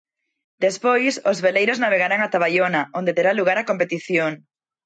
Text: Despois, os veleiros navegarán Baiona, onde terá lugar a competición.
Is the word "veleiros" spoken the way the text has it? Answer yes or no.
yes